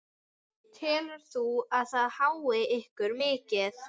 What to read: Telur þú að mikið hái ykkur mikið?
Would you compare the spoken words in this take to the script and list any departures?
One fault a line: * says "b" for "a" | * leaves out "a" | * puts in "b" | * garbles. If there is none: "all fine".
* says "það" for "mikið"